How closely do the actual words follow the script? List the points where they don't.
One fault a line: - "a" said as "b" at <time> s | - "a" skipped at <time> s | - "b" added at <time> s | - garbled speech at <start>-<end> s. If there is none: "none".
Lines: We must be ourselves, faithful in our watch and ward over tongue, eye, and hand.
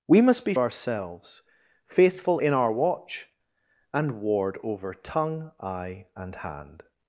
none